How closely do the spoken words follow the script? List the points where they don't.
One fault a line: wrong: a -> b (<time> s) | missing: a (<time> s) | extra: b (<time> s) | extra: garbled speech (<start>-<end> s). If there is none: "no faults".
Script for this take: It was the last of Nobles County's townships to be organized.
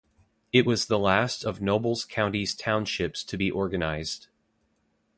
no faults